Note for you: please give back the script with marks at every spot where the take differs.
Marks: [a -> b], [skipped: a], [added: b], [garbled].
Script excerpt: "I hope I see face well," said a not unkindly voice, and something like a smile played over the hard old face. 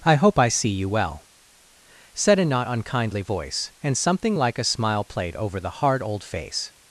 "I hope I see [face -> you] well," said a not unkindly voice, and something like a smile played over the hard old face.